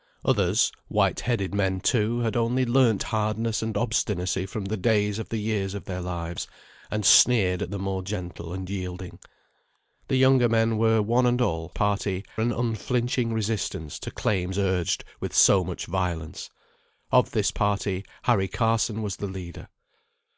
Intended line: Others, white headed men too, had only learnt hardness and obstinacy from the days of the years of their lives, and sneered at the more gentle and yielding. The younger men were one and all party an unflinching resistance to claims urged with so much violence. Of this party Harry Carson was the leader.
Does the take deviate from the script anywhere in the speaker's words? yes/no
no